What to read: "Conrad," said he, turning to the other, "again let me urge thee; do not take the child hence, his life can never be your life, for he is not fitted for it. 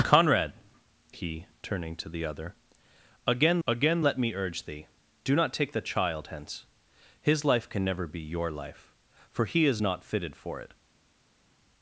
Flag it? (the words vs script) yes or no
yes